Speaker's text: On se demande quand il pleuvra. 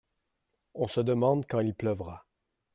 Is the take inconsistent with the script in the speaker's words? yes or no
no